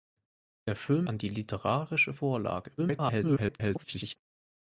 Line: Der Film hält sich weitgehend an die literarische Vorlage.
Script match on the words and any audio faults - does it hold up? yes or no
no